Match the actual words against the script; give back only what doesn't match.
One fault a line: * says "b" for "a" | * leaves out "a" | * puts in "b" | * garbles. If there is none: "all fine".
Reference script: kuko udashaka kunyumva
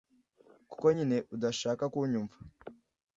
* puts in "nyine"